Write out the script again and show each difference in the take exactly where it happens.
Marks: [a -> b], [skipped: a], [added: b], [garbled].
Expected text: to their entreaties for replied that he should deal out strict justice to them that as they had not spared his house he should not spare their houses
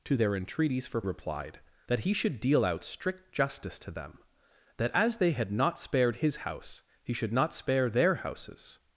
to their entreaties for replied that he should deal out strict justice to them that as they had not spared his house he should not spare their houses